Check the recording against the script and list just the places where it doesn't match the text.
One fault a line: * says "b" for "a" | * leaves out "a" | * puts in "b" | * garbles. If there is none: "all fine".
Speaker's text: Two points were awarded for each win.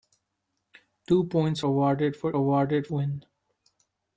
* leaves out "were"
* says "awarded" for "each"